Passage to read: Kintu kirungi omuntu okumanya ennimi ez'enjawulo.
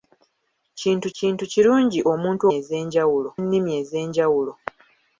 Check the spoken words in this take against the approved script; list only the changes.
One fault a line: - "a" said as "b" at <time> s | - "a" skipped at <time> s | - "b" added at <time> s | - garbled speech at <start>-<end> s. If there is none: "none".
- "kintu" added at 1.2 s
- "okumanya" said as "ez'enjawulo" at 2.6 s